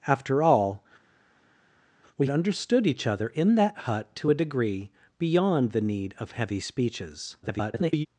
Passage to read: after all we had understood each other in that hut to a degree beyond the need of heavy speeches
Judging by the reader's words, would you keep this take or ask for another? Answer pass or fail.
fail